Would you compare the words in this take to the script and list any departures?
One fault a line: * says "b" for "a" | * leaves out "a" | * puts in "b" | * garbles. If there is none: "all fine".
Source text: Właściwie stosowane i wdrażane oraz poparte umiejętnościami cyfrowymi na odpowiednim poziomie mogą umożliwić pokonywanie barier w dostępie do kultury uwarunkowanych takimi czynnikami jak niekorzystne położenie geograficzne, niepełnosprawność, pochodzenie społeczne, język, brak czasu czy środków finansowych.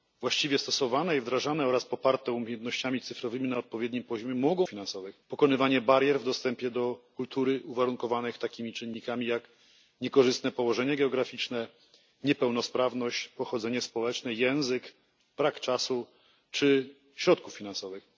* says "finansowych" for "umożliwić"